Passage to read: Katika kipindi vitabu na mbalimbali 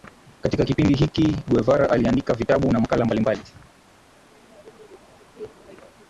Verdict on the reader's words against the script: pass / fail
fail